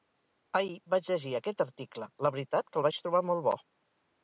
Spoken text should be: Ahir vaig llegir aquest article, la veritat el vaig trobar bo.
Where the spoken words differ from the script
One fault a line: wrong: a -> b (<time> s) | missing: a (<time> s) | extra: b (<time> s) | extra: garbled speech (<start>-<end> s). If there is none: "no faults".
extra: que (2.7 s)
extra: molt (3.3 s)